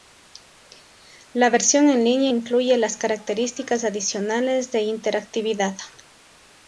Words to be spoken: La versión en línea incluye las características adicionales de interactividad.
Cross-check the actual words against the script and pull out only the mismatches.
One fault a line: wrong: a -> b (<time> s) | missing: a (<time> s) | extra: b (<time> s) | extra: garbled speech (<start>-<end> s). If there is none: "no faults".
no faults